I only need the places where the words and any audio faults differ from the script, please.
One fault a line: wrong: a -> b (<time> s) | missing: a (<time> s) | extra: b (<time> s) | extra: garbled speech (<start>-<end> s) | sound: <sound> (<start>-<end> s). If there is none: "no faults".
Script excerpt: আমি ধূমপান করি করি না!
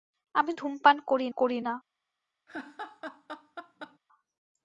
sound: laugh (2.5-4.0 s)